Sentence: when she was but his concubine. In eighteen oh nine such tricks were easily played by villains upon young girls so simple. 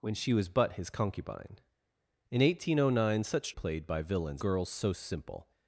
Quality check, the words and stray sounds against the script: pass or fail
fail